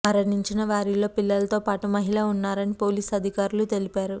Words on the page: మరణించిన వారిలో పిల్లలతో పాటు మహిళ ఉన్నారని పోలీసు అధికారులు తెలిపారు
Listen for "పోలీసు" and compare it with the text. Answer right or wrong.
right